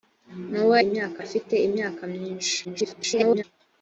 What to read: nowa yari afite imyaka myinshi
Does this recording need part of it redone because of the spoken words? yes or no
yes